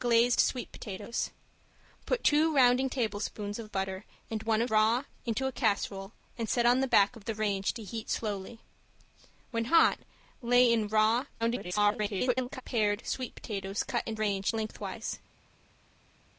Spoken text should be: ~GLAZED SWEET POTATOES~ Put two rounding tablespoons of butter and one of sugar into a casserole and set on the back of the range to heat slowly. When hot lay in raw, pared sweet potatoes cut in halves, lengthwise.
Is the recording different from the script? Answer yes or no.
yes